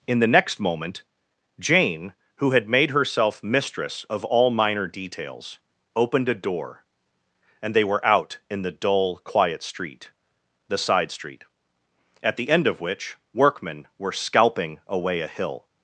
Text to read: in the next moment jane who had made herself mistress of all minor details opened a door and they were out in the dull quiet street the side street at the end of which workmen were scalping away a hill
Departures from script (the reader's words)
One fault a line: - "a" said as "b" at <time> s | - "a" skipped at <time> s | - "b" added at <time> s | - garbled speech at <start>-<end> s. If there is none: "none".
none